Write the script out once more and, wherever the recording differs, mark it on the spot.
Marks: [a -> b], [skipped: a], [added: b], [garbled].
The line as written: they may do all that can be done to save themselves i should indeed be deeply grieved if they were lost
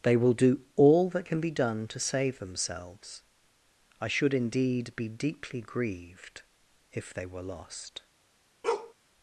they [may -> will] do all that can be done to save themselves i should indeed be deeply grieved if they were lost